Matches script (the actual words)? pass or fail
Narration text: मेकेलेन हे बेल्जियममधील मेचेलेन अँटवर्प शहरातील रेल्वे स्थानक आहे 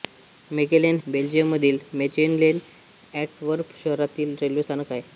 fail